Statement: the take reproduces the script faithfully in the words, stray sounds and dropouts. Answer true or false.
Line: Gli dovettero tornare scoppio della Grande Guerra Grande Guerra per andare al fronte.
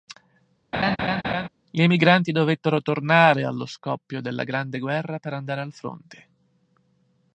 false